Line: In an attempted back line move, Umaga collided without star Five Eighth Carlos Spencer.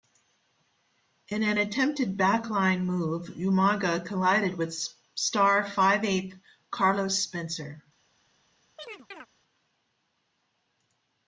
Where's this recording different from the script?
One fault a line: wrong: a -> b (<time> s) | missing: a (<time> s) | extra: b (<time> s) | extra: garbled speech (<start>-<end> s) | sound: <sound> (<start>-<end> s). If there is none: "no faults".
wrong: without -> with (4.6 s)
sound: chirp (8.8-9.3 s)